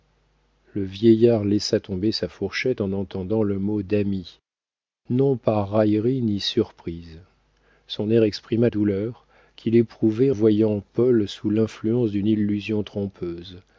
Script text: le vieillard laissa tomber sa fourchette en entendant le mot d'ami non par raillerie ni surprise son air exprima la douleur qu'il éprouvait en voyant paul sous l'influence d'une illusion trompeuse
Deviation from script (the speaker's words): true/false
true